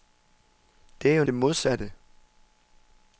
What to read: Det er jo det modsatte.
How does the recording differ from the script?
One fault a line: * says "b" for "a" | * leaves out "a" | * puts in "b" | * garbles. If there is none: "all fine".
all fine